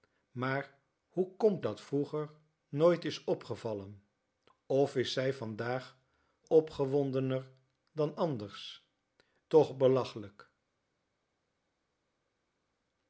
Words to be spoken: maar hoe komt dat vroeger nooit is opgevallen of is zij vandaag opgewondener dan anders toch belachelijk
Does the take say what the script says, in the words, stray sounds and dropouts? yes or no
yes